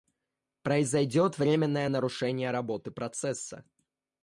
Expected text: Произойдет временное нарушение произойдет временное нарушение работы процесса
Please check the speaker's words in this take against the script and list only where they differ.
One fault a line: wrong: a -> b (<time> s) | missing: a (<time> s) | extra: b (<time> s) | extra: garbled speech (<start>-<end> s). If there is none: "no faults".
missing: произойдет временное нарушение (2.5 s)